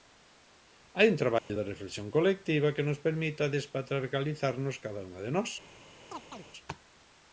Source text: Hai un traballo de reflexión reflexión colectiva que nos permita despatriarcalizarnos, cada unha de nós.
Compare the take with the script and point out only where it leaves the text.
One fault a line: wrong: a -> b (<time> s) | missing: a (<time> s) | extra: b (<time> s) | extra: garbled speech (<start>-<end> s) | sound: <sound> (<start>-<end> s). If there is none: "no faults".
sound: dropout (1.4-1.5 s)
missing: reflexión (2.1 s)
sound: chirp (6.1-6.5 s)